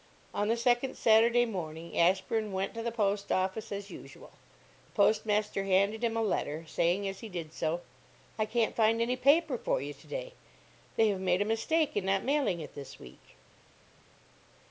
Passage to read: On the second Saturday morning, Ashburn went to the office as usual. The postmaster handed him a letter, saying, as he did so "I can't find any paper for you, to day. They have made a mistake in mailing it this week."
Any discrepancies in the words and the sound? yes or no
yes